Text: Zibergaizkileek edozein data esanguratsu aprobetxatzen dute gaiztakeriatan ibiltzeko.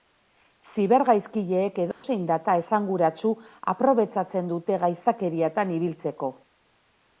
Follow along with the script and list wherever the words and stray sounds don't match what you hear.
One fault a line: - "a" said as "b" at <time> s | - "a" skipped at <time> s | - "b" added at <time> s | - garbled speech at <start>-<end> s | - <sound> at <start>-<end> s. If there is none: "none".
- dropout at 1.9-2.0 s